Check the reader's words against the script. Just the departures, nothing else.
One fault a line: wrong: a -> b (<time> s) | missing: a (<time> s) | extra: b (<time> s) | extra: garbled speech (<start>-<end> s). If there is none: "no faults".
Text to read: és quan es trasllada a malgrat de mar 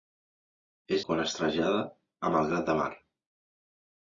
no faults